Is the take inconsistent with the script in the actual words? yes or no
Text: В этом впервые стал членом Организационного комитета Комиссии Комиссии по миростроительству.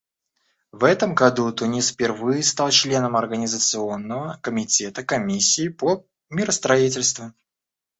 yes